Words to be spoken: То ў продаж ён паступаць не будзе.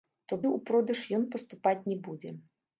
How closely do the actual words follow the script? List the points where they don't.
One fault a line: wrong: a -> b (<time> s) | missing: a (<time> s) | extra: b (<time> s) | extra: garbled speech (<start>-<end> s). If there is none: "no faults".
no faults